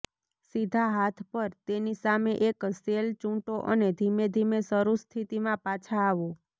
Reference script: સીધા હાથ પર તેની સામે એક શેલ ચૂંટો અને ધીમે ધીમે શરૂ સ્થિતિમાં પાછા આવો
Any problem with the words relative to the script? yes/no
no